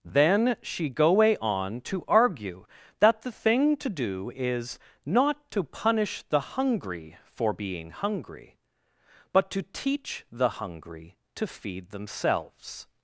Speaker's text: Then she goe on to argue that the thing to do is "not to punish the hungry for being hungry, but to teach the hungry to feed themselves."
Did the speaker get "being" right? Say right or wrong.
right